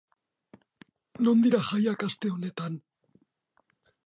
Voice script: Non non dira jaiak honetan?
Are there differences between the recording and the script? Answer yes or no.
yes